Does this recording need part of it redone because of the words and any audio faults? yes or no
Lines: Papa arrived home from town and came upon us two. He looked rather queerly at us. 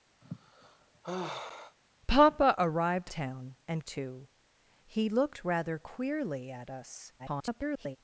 yes